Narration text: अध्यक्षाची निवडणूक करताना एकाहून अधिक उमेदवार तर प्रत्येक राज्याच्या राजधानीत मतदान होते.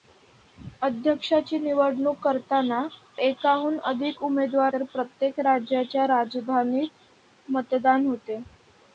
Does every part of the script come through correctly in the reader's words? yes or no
yes